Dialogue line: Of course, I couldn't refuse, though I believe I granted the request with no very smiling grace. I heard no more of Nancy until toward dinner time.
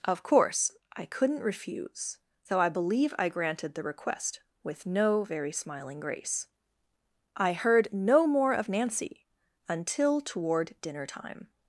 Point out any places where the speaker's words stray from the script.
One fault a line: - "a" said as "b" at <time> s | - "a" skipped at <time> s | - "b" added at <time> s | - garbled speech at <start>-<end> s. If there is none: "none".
none